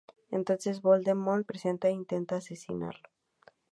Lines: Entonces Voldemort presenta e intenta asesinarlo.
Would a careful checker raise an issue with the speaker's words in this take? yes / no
no